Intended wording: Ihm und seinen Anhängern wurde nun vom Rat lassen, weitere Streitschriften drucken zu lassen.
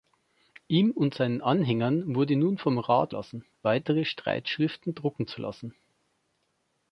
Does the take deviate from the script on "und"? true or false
false